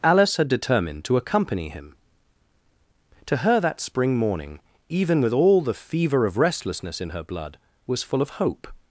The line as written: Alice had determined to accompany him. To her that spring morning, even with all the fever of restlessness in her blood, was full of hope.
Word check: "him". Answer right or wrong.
right